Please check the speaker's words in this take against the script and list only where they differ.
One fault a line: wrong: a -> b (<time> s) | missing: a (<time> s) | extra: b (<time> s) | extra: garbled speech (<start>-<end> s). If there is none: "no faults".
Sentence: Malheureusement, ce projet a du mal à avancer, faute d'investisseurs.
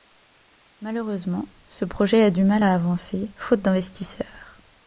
no faults